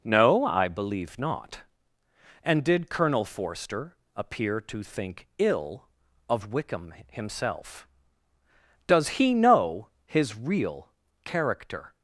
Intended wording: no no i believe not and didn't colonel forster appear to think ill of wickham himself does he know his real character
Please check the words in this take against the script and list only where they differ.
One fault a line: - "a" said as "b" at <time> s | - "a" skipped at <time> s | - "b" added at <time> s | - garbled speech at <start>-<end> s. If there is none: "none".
- "no" skipped at 0.5 s
- "didn't" said as "did" at 2.6 s